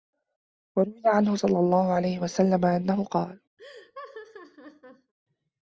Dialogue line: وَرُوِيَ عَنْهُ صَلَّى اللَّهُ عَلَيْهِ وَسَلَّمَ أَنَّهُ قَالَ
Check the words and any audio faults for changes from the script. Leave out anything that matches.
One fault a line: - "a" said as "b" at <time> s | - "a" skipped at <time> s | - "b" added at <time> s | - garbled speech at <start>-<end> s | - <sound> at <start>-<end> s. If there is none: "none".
- laugh at 3.6-5.1 s